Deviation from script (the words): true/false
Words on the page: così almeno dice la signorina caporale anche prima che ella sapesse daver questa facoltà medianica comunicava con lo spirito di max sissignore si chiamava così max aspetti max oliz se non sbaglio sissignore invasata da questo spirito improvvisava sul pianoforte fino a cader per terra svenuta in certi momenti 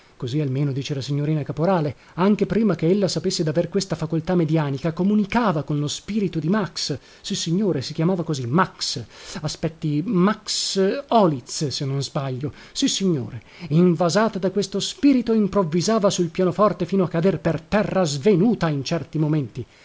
false